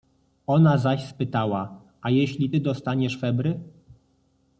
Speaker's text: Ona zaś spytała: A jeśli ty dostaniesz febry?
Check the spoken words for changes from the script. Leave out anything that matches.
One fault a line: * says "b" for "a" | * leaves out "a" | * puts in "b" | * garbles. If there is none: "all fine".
all fine